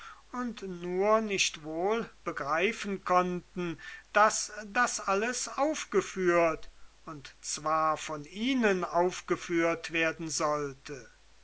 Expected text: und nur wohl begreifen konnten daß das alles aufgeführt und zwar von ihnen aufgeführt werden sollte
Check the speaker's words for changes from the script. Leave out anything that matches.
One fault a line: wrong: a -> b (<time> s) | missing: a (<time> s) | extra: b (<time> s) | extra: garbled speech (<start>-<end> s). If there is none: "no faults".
extra: nicht (1.2 s)